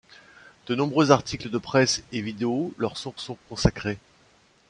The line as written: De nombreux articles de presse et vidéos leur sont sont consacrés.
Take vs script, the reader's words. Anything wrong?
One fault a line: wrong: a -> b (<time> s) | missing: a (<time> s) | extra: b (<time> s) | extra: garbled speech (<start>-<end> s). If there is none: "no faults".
no faults